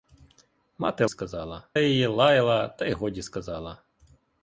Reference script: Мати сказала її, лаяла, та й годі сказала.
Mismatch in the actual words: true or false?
false